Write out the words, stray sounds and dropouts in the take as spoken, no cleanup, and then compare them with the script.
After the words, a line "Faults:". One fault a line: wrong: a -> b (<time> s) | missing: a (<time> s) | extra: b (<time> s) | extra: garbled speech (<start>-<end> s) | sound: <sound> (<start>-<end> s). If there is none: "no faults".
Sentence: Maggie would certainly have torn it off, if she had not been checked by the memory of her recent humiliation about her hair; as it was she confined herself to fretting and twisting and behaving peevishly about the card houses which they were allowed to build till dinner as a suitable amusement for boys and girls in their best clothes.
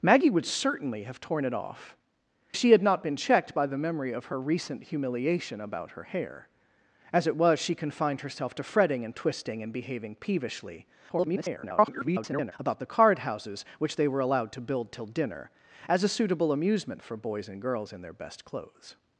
Maggie would certainly have torn it off, she had not been checked by the memory of her recent humiliation about her hair; as it was she confined herself to fretting and twisting and behaving peevishly [garbled] about the card houses which they were allowed to build till dinner as a suitable amusement for boys and girls in their best clothes.
Faults:
missing: if (1.9 s)
extra: garbled speech (11.1-12.5 s)